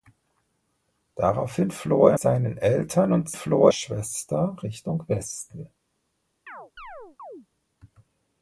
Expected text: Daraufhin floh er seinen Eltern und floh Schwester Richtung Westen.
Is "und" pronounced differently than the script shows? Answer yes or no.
no